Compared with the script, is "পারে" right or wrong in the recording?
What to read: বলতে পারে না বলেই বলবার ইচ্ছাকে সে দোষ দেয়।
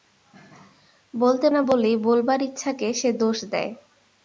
wrong